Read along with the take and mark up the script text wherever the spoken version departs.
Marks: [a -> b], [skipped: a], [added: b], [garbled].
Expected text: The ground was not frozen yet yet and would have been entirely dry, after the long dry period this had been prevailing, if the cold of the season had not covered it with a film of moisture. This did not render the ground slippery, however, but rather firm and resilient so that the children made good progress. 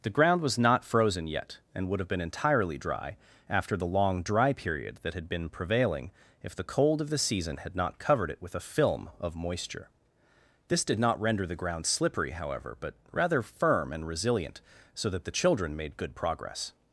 The ground was not frozen yet [skipped: yet] and would have been entirely dry, after the long dry period [this -> that] had been prevailing, if the cold of the season had not covered it with a film of moisture. This did not render the ground slippery, however, but rather firm and resilient so that the children made good progress.